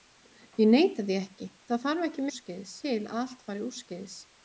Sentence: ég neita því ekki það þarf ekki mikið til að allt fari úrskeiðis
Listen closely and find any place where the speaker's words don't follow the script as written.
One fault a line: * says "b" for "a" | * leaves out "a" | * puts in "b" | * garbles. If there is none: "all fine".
* says "úrskeiðis" for "mikið"